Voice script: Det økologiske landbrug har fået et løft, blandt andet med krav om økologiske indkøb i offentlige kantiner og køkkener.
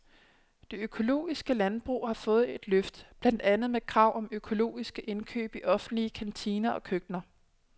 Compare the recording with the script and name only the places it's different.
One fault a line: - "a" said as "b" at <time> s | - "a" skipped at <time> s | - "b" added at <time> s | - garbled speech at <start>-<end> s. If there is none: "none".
none